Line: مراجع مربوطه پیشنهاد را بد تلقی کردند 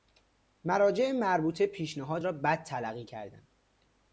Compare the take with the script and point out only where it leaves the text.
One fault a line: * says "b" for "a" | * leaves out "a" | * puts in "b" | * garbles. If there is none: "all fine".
all fine